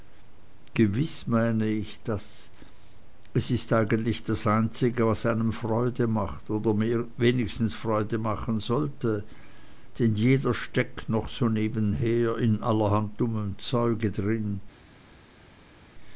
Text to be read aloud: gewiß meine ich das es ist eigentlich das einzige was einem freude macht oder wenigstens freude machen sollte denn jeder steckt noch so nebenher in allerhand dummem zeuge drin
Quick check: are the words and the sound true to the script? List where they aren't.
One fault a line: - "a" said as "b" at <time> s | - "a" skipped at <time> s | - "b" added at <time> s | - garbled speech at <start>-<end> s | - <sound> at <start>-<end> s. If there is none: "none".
none